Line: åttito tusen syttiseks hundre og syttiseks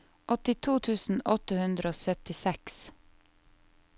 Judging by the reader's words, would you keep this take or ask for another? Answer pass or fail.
fail